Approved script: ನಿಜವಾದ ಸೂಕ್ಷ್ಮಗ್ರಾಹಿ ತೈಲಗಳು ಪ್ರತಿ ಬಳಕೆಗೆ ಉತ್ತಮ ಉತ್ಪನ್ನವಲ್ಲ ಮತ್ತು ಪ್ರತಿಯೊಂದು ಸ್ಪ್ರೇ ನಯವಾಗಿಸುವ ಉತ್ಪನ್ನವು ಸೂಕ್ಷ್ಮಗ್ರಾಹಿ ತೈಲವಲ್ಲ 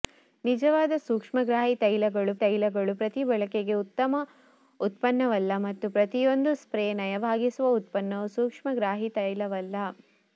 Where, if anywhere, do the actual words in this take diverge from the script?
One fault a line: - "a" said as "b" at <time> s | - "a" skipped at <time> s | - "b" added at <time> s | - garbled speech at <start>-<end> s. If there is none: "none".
- "ತೈಲಗಳು" added at 2.4 s